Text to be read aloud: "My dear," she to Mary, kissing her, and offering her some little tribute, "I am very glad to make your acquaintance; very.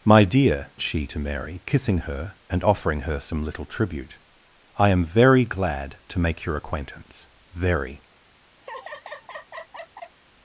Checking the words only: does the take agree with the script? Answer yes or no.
yes